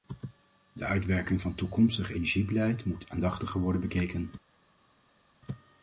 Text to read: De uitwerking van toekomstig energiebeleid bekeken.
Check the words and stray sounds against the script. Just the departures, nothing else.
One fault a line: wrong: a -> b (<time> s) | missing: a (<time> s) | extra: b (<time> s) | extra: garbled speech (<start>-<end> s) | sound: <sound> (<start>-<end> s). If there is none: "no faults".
extra: moet aandachtiger worden (2.8 s)